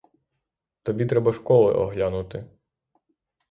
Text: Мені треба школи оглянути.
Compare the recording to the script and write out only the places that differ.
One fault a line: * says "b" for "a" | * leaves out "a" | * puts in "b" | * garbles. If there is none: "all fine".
* says "Тобі" for "Мені"